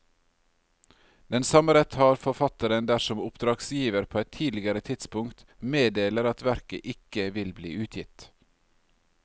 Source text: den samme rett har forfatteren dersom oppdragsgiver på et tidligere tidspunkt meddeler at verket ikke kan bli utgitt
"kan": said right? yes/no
no